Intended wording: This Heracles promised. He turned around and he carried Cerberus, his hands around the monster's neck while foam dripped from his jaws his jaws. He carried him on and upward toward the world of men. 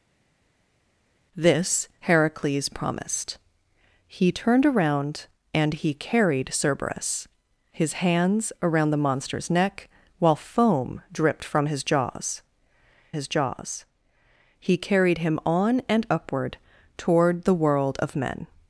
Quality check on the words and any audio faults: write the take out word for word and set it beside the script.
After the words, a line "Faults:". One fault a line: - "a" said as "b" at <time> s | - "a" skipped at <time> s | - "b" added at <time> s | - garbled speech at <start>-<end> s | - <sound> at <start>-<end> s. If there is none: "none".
This Heracles promised. He turned around and he carried Cerberus, his hands around the monster's neck while foam dripped from his jaws his jaws. He carried him on and upward toward the world of men.
Faults:
none